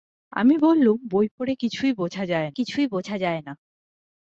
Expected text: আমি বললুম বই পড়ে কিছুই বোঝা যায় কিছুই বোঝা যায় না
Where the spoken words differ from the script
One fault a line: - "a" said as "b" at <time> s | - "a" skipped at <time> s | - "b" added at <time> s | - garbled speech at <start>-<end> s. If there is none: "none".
none